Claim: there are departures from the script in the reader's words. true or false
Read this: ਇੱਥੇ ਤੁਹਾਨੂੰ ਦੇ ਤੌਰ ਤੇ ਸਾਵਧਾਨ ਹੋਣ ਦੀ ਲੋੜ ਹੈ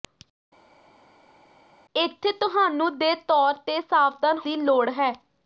true